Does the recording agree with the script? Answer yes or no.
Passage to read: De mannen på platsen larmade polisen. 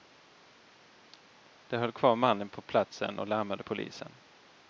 no